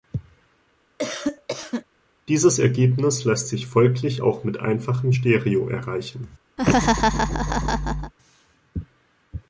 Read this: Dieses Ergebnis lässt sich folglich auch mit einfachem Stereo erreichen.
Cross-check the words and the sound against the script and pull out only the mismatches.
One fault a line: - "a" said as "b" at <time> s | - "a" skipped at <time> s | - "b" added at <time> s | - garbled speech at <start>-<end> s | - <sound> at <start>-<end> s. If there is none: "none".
- cough at 1.0-1.8 s
- laugh at 6.6-8.1 s